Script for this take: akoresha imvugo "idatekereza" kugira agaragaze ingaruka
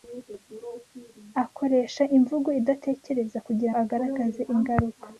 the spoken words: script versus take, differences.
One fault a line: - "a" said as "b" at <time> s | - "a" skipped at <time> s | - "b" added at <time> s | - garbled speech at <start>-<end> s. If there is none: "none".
none